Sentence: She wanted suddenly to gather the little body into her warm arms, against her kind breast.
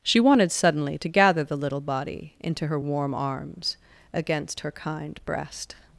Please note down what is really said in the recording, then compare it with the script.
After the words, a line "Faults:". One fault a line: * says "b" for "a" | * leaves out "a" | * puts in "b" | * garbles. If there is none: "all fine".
She wanted suddenly to gather the little body into her warm arms, against her kind breast.
Faults:
all fine